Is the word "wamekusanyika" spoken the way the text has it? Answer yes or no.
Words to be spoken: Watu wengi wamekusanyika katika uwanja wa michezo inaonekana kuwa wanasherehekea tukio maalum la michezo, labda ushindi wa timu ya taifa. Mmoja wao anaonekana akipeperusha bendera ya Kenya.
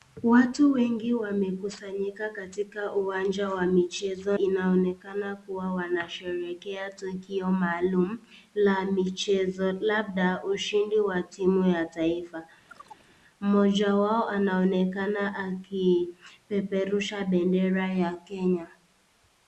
yes